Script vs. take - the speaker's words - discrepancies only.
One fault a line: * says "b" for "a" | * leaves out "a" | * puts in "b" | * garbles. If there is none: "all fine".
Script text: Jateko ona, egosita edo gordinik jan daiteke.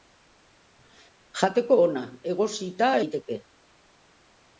* leaves out "edo gordinik jan"